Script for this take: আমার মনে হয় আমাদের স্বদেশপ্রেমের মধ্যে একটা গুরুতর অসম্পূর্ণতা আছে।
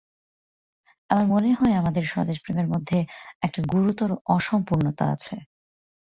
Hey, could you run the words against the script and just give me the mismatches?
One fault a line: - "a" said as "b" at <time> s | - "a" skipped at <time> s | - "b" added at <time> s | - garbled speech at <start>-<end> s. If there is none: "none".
none